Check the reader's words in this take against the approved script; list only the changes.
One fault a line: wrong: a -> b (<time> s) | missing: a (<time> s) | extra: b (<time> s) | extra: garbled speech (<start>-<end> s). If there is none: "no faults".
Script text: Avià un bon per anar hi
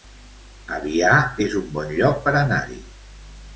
extra: es (1.5 s)
extra: lloc (2.0 s)